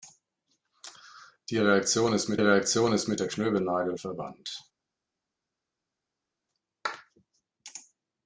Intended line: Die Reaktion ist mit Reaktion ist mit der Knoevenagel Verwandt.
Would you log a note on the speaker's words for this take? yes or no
no